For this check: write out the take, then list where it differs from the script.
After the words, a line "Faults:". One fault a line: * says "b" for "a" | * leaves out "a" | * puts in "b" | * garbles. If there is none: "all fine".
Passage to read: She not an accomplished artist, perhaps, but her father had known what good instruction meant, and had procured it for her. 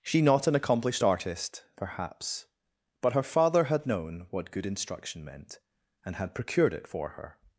She not an accomplished artist, perhaps, but her father had known what good instruction meant, and had procured it for her.
Faults:
all fine